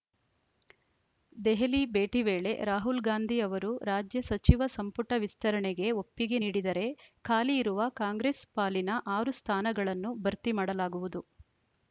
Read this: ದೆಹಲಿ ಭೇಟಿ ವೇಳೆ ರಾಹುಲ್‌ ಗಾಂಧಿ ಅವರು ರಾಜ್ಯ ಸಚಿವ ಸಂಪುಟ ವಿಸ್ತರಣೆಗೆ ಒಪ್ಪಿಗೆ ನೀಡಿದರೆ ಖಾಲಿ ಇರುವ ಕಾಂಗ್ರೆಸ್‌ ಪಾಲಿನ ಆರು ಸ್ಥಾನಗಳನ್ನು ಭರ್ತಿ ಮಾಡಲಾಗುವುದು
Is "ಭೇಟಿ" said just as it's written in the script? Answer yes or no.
yes